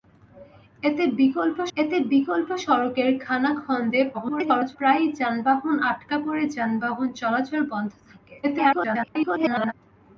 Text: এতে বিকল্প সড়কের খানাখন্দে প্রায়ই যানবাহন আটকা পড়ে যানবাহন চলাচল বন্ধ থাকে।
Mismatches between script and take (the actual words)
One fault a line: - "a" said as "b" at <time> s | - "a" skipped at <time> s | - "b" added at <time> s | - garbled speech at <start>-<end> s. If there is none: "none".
- "এতে বিকল্প" added at 1.8 s
- garbled speech at 4.1-4.8 s
- garbled speech at 8.4-9.7 s